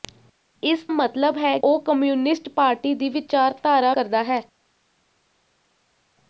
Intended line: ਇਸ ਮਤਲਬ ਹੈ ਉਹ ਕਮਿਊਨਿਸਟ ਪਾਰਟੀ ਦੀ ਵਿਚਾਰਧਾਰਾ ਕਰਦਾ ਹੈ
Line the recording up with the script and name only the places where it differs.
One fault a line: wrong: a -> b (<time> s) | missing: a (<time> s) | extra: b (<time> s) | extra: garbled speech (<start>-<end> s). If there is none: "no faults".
no faults